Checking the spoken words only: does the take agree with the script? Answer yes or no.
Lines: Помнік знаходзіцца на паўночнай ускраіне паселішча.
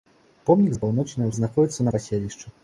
no